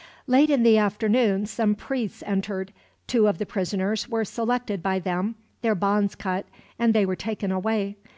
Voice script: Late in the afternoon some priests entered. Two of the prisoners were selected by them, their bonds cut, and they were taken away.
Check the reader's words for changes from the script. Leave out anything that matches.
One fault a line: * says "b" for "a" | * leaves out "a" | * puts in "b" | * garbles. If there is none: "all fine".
all fine